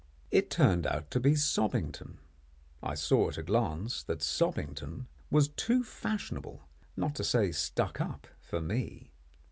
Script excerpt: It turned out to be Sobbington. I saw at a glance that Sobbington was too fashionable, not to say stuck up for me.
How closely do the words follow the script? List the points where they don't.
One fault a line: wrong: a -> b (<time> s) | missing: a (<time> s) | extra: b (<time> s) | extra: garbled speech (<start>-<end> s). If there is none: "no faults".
no faults